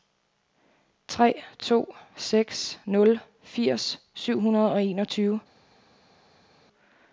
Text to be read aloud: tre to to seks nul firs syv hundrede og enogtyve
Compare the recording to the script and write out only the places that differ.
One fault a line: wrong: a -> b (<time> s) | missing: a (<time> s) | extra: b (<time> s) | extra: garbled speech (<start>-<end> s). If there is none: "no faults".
missing: to (1.9 s)